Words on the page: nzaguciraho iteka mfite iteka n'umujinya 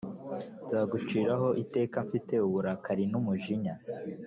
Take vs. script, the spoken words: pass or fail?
fail